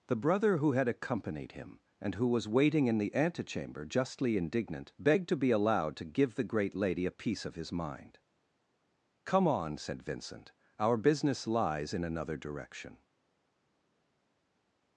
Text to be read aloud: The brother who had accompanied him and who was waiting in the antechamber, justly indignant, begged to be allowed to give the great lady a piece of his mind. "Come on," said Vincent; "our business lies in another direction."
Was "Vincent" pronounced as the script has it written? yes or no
yes